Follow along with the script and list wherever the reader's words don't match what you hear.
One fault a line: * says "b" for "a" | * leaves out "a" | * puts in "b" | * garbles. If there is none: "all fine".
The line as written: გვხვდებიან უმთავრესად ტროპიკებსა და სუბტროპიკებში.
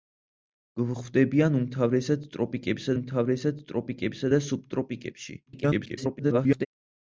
* puts in "უმთავრესად ტროპიკებსა"
* garbles